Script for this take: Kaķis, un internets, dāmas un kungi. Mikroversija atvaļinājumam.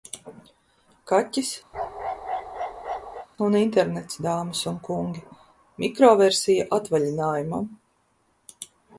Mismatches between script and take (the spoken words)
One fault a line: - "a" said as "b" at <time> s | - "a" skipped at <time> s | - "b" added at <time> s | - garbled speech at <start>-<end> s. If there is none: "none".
none